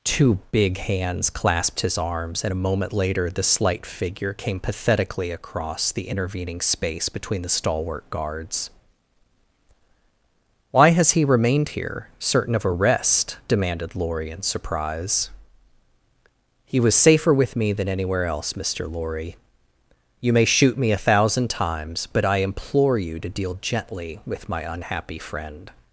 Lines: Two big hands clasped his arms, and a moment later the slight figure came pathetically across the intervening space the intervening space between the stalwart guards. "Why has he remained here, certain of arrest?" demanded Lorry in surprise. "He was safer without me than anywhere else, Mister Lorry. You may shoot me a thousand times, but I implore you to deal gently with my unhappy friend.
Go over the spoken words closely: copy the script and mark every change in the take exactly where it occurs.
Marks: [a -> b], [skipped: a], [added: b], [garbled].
Two big hands clasped his arms, and a moment later the slight figure came pathetically across the intervening space [skipped: the intervening space] between the stalwart guards. "Why has he remained here, certain of arrest?" demanded Lorry in surprise. "He was safer [without -> with] me than anywhere else, Mister Lorry. You may shoot me a thousand times, but I implore you to deal gently with my unhappy friend.